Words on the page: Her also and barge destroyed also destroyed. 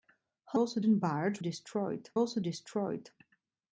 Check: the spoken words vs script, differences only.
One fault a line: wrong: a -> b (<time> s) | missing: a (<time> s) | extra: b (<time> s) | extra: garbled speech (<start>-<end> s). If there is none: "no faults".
no faults